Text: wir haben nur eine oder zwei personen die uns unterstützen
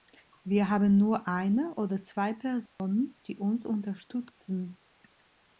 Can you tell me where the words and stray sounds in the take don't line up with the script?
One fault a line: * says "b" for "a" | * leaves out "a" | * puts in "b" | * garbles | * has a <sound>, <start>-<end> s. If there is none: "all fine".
* has a dropout, 2.7-2.8 s